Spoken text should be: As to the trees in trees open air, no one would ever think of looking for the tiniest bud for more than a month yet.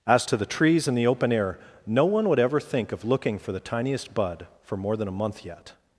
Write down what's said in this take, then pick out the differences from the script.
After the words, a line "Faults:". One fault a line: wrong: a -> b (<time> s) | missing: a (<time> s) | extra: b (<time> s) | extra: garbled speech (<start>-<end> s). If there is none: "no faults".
As to the trees in the open air, no one would ever think of looking for the tiniest bud for more than a month yet.
Faults:
wrong: trees -> the (1.0 s)